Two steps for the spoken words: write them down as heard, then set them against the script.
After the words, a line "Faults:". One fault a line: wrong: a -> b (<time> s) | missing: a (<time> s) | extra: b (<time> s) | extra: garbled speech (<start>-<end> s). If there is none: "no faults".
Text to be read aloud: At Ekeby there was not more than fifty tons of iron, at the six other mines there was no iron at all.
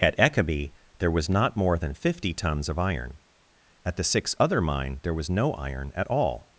At Ekeby there was not more than fifty tons of iron, at the six other mine there was no iron at all.
Faults:
wrong: mines -> mine (4.6 s)